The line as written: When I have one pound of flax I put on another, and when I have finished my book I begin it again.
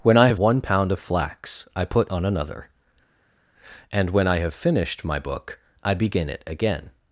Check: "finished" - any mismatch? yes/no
no